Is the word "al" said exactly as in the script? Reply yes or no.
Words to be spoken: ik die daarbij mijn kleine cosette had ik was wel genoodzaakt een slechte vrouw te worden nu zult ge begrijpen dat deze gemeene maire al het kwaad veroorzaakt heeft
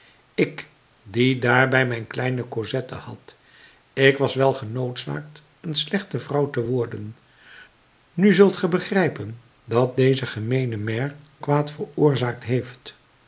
no